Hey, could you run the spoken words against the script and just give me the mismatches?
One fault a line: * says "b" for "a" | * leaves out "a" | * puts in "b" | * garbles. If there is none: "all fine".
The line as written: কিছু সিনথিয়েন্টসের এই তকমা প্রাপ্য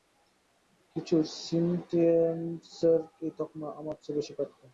* puts in "আমার চেয়ে বেশি"